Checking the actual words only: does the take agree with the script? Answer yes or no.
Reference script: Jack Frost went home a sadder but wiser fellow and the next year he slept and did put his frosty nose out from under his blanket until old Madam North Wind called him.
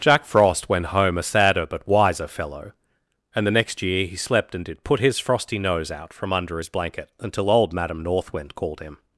yes